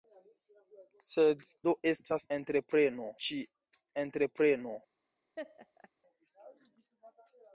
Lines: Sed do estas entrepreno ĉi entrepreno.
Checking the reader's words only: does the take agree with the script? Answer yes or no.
yes